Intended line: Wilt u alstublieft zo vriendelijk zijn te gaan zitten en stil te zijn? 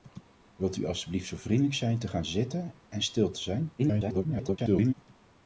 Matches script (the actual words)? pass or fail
fail